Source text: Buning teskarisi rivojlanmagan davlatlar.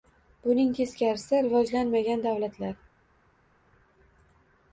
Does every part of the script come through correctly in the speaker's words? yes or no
yes